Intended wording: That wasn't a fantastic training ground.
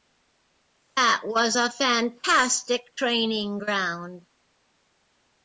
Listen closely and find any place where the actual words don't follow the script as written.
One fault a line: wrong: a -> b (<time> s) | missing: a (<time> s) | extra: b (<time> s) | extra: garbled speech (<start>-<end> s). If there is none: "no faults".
wrong: wasn't -> was (1.2 s)